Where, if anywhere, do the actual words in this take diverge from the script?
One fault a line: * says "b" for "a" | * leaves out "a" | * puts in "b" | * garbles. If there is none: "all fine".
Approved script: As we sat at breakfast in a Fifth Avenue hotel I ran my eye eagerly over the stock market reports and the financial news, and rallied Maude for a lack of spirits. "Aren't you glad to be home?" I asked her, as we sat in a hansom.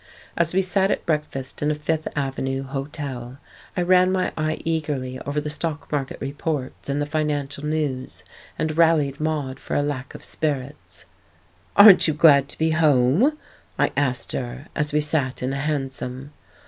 all fine